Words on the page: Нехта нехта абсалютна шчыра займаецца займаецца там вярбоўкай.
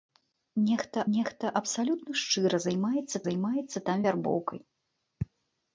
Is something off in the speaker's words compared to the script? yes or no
no